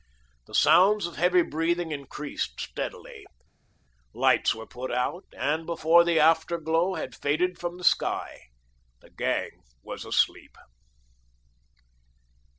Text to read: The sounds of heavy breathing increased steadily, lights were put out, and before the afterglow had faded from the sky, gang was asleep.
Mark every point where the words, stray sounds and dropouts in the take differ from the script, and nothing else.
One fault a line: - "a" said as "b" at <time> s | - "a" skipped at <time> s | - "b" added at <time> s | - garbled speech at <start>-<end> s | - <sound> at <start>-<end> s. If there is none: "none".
- "the" added at 9.0 s